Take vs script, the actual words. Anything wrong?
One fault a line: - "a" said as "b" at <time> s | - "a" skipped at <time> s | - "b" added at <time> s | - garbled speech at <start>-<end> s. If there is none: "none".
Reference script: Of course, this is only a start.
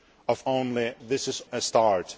- "course" said as "only" at 0.4 s
- "only" skipped at 1.4 s